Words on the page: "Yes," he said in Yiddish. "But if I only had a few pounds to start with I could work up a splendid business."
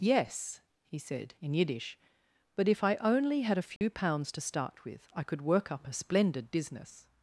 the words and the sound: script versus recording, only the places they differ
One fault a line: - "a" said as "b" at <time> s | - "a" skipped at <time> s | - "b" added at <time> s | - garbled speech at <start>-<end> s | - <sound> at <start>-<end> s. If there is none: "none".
- dropout at 3.8-3.8 s